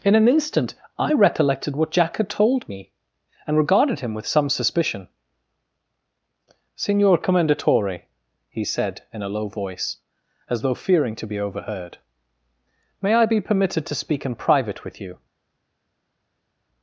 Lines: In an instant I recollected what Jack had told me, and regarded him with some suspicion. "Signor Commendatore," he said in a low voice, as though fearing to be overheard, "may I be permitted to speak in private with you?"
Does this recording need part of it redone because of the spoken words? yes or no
no